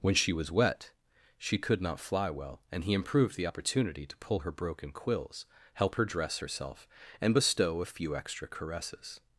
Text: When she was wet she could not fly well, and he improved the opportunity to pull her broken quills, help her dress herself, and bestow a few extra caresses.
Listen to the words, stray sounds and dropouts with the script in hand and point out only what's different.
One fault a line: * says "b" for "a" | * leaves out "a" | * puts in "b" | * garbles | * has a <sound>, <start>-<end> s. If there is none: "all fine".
all fine